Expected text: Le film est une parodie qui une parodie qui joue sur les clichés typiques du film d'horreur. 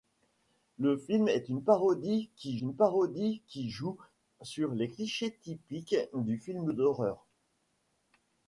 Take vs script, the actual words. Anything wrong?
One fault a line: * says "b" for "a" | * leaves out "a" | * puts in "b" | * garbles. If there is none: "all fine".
all fine